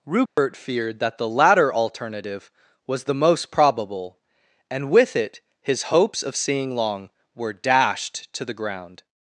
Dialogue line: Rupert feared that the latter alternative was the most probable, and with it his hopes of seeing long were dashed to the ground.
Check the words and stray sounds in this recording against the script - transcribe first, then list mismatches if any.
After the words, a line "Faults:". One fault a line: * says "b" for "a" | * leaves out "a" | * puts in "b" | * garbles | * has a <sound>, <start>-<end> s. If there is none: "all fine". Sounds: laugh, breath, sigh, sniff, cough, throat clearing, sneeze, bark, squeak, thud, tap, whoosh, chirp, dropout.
Rupert feared that the latter alternative was the most probable, and with it his hopes of seeing long were dashed to the ground.
Faults:
* has a dropout, 0.3-0.4 s